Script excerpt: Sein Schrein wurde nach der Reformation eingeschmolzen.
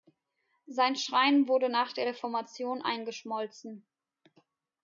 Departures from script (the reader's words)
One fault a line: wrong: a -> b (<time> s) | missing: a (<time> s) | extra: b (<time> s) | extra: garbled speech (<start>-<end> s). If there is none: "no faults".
no faults